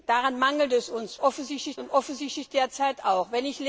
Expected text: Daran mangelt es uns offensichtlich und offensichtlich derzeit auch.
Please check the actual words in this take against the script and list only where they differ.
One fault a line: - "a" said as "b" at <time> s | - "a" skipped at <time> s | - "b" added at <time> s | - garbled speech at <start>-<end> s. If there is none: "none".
none